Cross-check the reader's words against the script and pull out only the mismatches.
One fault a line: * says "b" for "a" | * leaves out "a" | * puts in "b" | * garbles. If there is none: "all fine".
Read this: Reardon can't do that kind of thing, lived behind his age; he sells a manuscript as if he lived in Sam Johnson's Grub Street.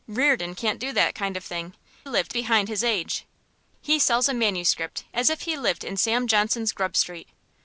all fine